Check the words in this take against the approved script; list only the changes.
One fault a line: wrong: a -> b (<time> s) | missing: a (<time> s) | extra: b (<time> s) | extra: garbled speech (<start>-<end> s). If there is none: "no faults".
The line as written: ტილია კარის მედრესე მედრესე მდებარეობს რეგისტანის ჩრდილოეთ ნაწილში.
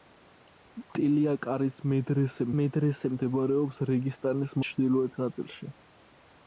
no faults